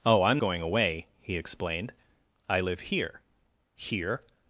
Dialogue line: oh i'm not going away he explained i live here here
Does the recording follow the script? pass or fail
fail